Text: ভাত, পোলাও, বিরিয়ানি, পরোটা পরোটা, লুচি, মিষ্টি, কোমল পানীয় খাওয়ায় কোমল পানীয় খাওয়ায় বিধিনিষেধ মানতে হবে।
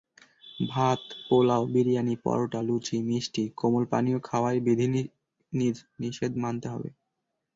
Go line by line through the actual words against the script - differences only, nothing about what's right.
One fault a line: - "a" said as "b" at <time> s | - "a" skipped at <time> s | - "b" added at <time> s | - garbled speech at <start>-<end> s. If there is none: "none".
- "পরোটা" skipped at 2.6 s
- "কোমল পানীয় খাওয়ায়" skipped at 4.6 s